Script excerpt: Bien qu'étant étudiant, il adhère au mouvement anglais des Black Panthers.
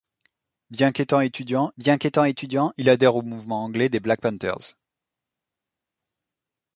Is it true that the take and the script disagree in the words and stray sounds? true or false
true